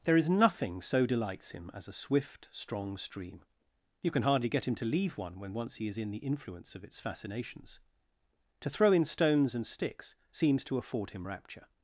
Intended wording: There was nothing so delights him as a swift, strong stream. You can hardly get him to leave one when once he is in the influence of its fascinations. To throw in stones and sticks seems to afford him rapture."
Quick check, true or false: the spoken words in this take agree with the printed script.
false